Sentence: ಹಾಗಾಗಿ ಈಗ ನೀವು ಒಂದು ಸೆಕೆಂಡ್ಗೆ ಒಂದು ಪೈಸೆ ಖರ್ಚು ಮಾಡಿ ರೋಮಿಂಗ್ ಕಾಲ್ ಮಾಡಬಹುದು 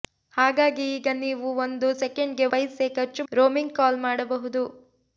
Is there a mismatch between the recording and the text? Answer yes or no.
yes